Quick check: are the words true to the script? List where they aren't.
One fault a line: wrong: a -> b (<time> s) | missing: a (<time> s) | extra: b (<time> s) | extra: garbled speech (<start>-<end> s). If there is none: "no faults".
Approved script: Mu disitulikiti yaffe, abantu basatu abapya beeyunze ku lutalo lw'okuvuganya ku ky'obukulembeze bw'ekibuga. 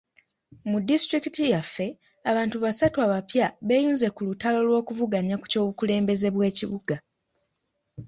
no faults